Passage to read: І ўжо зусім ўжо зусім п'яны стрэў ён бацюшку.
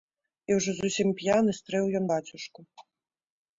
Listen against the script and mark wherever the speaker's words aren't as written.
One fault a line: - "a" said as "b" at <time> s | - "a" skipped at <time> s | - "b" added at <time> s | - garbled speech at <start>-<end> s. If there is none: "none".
- "ўжо зусім" skipped at 1.1 s